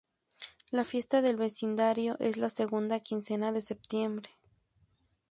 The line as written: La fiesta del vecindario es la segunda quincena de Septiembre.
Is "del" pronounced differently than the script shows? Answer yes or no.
no